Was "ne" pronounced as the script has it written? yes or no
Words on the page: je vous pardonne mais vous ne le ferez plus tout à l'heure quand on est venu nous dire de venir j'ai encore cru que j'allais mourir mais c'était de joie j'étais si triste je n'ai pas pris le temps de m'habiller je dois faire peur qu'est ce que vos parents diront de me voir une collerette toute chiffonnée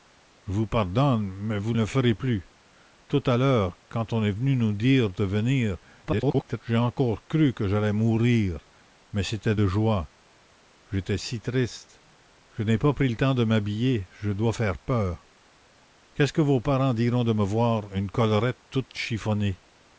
no